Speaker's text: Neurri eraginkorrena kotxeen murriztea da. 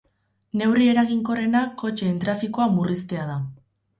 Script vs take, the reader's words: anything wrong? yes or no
yes